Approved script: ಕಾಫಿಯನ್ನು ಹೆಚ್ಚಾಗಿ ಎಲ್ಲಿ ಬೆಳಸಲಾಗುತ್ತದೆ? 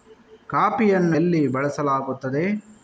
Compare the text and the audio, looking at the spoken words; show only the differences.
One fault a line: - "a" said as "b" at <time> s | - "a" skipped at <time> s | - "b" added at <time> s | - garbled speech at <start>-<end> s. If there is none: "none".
- "ಹೆಚ್ಚಾಗಿ" skipped at 1.2 s